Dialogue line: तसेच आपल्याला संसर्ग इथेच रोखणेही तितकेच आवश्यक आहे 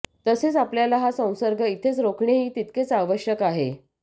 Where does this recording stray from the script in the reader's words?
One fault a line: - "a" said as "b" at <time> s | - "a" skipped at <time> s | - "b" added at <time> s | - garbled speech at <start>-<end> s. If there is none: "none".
- "हा" added at 1.0 s